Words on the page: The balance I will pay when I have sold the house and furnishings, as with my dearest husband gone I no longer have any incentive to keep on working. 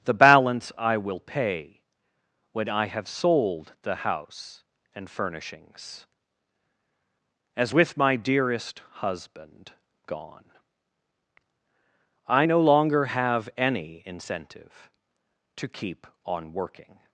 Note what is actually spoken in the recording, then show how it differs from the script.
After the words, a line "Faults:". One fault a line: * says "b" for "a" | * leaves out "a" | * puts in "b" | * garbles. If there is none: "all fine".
The balance I will pay when I have sold the house and furnishings, as with my dearest husband gone I no longer have any incentive to keep on working.
Faults:
all fine